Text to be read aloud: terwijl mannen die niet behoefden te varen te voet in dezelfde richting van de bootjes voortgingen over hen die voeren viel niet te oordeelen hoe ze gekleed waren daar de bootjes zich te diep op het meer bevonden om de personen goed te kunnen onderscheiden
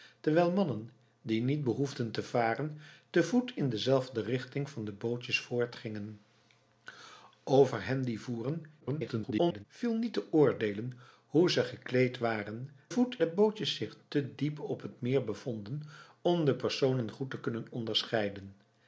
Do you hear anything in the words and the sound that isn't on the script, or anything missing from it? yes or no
yes